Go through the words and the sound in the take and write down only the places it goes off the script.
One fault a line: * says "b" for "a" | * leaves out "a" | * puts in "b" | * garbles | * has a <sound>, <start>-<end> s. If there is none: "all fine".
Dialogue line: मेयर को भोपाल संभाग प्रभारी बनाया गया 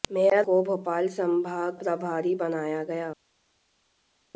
all fine